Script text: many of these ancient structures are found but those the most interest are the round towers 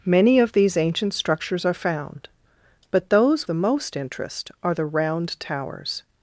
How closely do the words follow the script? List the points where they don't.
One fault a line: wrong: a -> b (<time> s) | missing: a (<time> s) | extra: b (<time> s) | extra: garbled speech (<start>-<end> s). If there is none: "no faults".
no faults